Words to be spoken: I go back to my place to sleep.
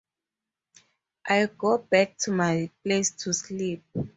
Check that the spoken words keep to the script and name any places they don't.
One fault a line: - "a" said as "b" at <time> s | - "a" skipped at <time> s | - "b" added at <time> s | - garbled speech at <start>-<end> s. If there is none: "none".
none